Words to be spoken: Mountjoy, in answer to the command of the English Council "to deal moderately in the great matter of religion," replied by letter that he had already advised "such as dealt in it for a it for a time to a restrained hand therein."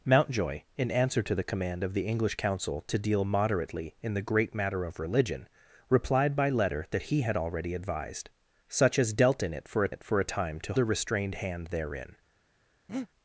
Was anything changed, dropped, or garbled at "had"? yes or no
no